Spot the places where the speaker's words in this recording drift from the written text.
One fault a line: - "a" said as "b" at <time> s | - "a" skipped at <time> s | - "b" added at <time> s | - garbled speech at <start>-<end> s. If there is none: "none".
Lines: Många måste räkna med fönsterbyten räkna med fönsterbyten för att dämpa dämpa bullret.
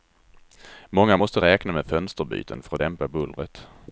- "räkna med fönsterbyten" skipped at 2.6 s
- "dämpa" skipped at 3.1 s